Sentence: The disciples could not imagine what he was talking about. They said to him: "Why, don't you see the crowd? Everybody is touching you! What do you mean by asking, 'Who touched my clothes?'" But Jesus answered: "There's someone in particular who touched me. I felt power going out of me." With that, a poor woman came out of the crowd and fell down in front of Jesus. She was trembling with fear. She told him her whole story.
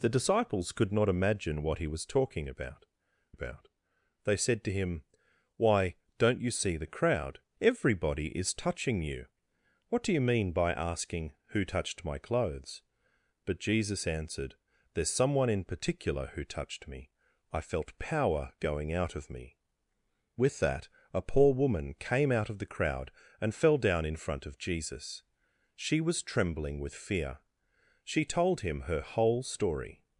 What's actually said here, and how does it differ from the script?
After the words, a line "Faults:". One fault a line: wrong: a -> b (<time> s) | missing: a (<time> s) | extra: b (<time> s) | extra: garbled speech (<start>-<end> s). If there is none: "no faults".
The disciples could not imagine what he was talking about about. They said to him: "Why, don't you see the crowd? Everybody is touching you! What do you mean by asking, 'Who touched my clothes?'" But Jesus answered: "There's someone in particular who touched me. I felt power going out of me." With that, a poor woman came out of the crowd and fell down in front of Jesus. She was trembling with fear. She told him her whole story.
Faults:
extra: about (3.3 s)